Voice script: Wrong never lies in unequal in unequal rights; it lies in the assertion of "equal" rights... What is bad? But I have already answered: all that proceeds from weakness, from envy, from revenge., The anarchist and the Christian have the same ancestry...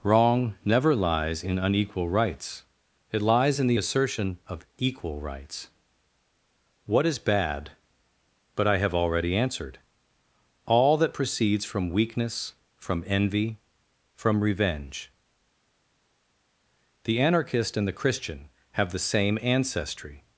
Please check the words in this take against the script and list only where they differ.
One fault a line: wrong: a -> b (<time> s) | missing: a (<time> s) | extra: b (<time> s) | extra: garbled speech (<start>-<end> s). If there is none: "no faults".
missing: in unequal (2.1 s)